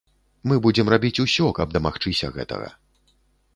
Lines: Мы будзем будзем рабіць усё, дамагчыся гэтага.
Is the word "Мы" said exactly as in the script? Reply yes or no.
yes